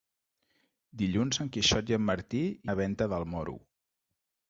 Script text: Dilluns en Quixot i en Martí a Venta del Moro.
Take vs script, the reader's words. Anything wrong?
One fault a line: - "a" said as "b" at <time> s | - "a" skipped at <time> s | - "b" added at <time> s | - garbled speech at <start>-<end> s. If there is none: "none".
none